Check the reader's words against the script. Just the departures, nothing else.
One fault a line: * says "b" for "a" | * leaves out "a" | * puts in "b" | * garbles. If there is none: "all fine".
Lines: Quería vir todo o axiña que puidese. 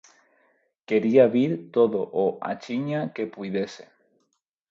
all fine